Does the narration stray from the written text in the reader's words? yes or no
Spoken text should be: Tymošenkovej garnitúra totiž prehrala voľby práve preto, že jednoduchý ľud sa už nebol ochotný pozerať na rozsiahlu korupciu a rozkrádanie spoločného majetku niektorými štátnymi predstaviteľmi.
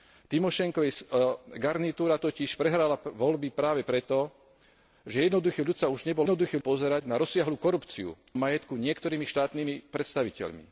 yes